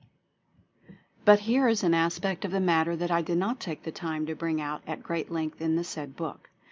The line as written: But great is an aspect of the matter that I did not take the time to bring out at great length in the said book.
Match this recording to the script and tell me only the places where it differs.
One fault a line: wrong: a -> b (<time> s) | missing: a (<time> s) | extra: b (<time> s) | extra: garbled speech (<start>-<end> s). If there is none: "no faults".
wrong: great -> here (1.4 s)